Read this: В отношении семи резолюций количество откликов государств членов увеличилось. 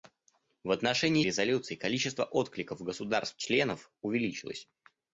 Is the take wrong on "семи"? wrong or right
wrong